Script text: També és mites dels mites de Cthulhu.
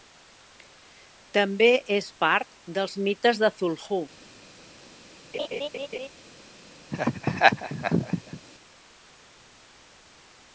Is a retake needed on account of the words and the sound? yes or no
yes